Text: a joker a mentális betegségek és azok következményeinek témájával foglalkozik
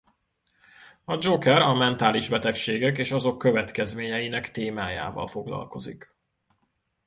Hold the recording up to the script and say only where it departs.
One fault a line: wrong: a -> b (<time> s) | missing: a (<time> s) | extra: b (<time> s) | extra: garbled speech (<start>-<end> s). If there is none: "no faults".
no faults